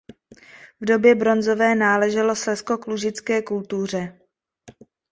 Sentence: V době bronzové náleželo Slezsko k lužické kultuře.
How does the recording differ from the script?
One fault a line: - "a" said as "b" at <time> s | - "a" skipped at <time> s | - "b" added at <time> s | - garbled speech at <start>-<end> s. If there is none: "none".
none